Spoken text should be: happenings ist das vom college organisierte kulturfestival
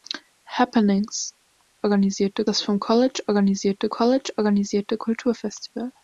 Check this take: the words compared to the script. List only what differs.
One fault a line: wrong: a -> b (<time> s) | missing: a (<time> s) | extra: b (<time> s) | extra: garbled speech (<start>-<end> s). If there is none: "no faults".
wrong: ist -> organisierte (1.8 s)
extra: college organisierte (3.9 s)